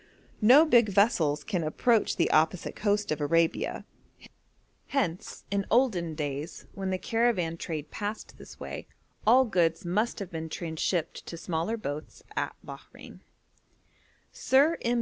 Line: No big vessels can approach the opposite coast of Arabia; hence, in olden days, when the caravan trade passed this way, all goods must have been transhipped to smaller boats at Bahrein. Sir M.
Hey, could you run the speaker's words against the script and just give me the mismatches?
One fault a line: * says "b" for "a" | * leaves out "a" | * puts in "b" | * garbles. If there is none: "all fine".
all fine